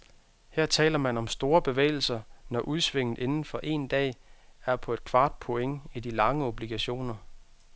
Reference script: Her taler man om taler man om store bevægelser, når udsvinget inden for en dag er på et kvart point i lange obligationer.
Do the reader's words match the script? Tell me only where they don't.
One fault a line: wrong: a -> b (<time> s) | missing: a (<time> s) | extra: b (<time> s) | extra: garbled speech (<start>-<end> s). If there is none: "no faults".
missing: taler man om (1.3 s)
extra: de (6.0 s)